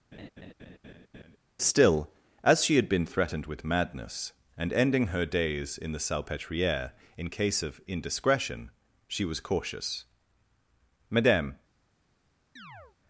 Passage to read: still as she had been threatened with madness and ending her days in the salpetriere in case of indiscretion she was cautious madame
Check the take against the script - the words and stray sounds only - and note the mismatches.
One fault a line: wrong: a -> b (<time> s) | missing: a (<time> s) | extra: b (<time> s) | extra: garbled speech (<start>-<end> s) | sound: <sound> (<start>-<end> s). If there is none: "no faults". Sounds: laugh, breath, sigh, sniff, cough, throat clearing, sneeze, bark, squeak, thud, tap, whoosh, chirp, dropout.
sound: laugh (0.1-1.4 s)
sound: chirp (12.6-13.0 s)